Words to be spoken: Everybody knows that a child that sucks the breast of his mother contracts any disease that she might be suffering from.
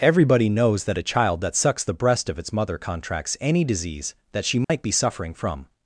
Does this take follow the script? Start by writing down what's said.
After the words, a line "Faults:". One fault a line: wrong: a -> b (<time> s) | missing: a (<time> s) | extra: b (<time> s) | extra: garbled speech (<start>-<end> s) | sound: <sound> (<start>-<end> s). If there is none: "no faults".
Everybody knows that a child that sucks the breast of its mother contracts any disease that she might be suffering from.
Faults:
wrong: his -> its (2.4 s)
sound: dropout (4.6-4.7 s)